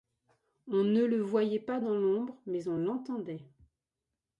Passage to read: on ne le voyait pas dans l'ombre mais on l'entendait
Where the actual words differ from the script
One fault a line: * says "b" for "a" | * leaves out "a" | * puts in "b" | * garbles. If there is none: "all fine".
all fine